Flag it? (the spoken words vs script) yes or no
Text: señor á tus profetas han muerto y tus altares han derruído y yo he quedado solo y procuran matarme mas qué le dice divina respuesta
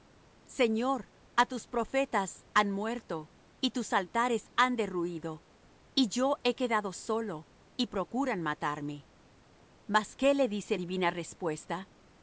no